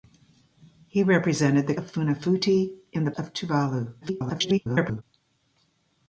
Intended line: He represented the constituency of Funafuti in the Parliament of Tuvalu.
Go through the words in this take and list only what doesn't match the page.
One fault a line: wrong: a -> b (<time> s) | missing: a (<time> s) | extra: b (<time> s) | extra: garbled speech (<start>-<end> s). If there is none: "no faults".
missing: constituency (1.8 s)
missing: Parliament (3.1 s)
extra: garbled speech (4.0-5.0 s)